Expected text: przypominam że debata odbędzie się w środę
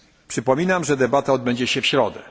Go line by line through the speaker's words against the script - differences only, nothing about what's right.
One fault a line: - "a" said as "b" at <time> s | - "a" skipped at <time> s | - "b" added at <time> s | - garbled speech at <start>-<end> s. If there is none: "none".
none